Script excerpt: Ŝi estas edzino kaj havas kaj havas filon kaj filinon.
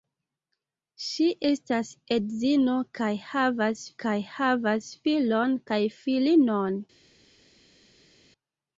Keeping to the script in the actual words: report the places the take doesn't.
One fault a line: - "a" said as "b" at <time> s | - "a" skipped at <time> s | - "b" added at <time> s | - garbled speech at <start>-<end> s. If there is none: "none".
none